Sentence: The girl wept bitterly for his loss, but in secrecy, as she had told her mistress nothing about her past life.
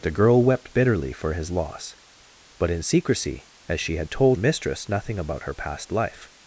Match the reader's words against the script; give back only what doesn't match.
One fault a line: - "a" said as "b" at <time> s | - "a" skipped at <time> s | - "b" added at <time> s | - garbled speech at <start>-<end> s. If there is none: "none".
- "her" skipped at 4.4 s